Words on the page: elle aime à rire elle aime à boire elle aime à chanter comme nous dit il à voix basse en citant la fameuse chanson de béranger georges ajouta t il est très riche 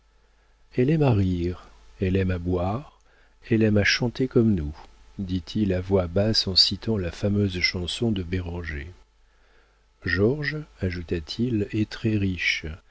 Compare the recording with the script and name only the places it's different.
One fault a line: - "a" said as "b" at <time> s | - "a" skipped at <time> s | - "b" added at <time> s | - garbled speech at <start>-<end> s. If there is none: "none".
none